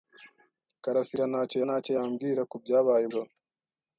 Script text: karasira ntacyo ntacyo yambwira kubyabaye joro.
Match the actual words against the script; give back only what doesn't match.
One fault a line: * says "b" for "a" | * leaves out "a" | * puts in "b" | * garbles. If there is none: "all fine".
all fine